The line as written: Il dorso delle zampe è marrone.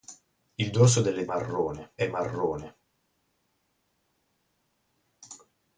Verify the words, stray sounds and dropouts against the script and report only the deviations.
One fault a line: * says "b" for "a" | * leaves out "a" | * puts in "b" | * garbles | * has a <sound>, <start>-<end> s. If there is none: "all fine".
* says "marrone" for "zampe"